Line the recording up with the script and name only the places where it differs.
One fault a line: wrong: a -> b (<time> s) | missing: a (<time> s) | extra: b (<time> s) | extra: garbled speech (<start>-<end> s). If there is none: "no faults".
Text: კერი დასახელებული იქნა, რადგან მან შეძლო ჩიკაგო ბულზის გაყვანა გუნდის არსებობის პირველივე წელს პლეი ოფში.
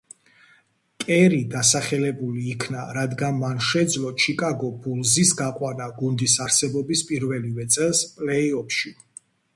no faults